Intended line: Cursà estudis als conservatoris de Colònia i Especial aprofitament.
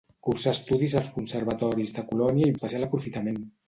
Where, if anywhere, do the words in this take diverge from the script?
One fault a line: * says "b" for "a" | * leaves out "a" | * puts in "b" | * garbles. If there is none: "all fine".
all fine